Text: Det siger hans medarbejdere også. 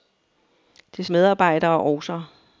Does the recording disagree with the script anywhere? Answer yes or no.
yes